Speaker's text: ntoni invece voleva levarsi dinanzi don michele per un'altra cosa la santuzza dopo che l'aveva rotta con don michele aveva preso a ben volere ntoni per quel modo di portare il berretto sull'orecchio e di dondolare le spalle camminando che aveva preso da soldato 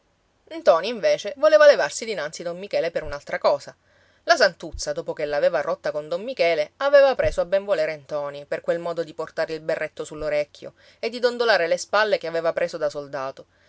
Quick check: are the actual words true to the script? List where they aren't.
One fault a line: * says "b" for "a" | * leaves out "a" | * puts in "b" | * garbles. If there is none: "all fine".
* leaves out "camminando"